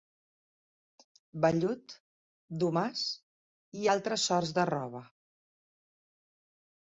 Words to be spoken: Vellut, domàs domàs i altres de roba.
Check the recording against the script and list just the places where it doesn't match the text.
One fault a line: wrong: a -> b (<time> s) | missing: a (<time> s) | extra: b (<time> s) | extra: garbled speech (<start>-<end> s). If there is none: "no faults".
missing: domàs (3.0 s)
extra: sorts (4.3 s)